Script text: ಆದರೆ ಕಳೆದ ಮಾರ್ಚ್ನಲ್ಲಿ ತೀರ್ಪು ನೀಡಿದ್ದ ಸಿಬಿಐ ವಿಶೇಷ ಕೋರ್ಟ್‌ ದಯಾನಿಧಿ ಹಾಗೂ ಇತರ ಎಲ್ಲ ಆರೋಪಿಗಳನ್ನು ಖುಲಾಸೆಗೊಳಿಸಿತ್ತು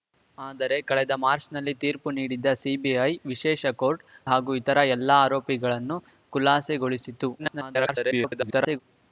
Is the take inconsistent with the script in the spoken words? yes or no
yes